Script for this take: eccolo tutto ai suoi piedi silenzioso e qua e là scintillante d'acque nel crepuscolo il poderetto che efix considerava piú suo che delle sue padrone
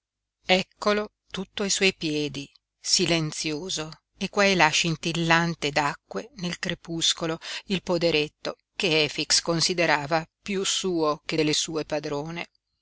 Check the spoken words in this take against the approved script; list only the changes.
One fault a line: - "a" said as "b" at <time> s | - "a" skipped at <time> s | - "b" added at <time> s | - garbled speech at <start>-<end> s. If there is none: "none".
none